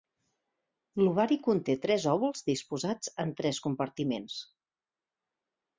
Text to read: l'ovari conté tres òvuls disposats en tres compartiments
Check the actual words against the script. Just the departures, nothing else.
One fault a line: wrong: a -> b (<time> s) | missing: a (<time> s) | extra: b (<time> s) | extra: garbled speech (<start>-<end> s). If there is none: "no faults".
no faults